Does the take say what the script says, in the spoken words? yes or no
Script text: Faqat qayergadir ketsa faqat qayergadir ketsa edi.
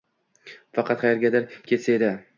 no